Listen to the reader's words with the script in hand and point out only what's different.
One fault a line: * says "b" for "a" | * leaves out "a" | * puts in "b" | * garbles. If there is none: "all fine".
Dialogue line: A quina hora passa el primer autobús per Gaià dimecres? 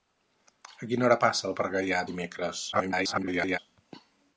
* leaves out "primer autobús"
* garbles